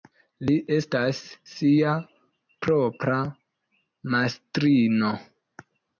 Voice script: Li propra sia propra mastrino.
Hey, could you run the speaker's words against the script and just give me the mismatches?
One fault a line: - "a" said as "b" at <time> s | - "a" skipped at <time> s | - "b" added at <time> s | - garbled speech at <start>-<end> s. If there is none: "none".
- "propra" said as "estas" at 0.8 s